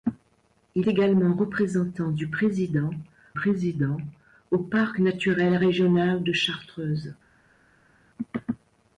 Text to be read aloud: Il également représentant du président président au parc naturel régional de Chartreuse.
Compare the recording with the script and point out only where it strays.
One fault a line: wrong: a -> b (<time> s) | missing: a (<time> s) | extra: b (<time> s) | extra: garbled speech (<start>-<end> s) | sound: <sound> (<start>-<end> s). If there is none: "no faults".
no faults